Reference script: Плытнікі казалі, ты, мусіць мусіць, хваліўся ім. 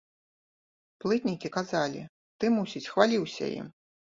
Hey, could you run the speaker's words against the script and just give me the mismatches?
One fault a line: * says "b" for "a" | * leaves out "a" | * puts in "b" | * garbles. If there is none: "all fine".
* leaves out "мусіць"